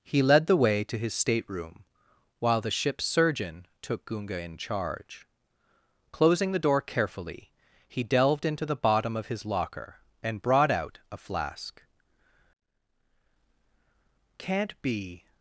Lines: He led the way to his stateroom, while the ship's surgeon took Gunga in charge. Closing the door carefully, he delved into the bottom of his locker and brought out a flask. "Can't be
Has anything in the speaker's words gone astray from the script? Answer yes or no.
no